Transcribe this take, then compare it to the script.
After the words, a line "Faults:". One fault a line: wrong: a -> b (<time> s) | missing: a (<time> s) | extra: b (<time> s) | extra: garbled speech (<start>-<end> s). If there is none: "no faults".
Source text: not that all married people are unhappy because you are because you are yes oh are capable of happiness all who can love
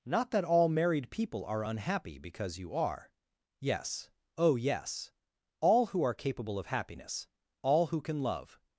not that all married people are unhappy because you are yes oh yes all who are capable of happiness all who can love
Faults:
wrong: because you are yes oh -> yes oh yes all who (3.6 s)